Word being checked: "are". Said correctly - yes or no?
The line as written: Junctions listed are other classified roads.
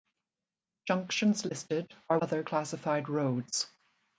yes